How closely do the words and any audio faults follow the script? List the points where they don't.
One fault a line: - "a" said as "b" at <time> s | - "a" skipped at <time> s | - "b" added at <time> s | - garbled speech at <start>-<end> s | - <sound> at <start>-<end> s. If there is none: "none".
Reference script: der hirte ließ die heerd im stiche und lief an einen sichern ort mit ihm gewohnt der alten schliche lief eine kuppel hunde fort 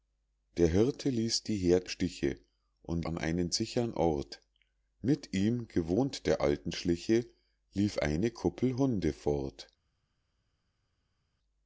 - "im" skipped at 1.9 s
- "lief" skipped at 3.1 s